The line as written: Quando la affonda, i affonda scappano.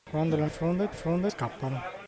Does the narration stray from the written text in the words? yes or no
no